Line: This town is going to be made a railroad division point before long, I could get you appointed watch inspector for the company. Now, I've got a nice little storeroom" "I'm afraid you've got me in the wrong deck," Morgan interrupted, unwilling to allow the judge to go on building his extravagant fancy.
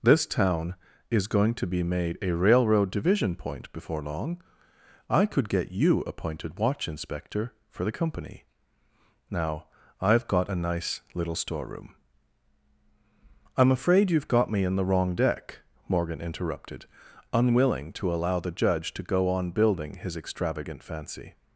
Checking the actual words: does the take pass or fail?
pass